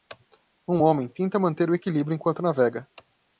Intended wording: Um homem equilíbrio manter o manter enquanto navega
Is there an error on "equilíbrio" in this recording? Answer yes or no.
yes